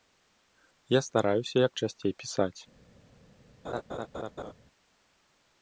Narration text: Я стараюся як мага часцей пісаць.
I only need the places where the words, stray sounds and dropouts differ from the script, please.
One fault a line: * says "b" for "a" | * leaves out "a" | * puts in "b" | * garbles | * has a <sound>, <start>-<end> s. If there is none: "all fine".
* leaves out "мага"
* has a laugh, 3.6-4.5 s